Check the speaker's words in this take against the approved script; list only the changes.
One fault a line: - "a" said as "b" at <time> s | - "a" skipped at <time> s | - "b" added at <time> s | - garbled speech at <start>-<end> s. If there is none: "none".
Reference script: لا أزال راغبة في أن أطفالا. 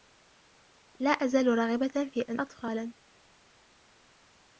none